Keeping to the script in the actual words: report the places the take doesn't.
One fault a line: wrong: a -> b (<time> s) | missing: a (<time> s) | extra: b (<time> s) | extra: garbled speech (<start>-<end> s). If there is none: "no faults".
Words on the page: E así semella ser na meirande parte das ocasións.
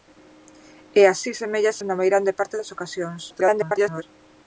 missing: ser (1.8 s)
extra: garbled speech (3.3-4.0 s)